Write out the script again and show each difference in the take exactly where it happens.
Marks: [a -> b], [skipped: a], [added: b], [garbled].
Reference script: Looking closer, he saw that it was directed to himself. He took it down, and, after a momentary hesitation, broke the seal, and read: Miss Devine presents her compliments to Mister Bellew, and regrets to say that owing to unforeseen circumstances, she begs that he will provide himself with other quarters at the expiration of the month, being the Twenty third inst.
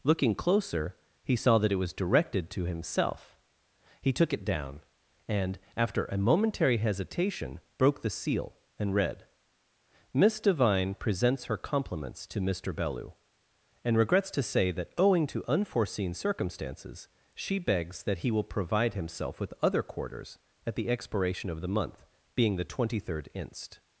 Looking closer, he saw that it was directed to himself. He took it down, and, after a momentary hesitation, broke the seal, and read: Miss Devine presents her compliments to Mister Bellew, and regrets to say that owing to unforeseen circumstances, she begs that he will provide himself with other quarters at the expiration of the month, being the Twenty third inst.